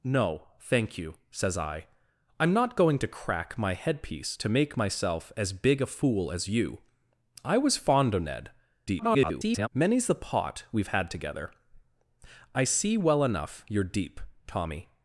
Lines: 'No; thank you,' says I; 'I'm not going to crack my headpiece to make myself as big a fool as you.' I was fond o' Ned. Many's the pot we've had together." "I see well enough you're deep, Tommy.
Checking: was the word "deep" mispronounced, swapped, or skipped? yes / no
no